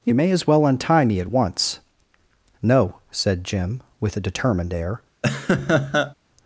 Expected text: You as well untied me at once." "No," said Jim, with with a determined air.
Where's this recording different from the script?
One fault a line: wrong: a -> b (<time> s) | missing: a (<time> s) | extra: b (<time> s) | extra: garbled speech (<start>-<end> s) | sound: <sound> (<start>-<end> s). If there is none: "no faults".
extra: may (0.1 s)
wrong: untied -> untie (0.7 s)
missing: with (4.2 s)
sound: laugh (5.2-6.1 s)